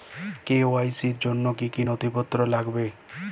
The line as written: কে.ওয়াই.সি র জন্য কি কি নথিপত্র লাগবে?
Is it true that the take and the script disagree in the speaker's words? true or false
false